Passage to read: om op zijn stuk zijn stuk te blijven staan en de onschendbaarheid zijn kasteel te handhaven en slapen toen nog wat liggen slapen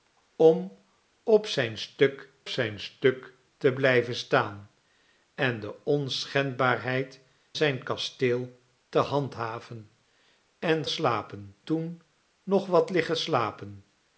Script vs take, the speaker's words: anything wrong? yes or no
no